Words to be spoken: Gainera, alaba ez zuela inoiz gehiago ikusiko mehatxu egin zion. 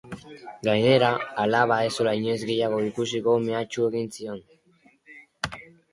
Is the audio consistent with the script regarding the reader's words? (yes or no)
yes